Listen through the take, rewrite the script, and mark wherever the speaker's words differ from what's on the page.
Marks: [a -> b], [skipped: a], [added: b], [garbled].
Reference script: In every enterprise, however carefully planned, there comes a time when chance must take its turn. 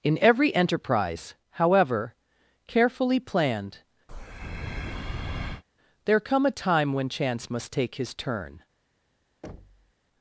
In every enterprise, however carefully planned, there [comes -> come] a time when chance must take [its -> his] turn.